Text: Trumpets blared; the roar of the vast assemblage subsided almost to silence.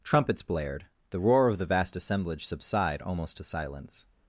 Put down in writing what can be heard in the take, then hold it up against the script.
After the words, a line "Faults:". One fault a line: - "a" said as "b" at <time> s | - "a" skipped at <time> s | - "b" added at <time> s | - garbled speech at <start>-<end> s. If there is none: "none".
Trumpets blared; the roar of the vast assemblage subside almost to silence.
Faults:
- "subsided" said as "subside" at 2.5 s